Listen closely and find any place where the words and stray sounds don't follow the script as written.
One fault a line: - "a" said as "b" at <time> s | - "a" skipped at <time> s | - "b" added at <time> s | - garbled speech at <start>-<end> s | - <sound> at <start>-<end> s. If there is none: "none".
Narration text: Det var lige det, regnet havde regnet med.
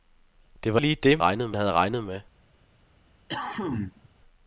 - cough at 3.3-4.1 s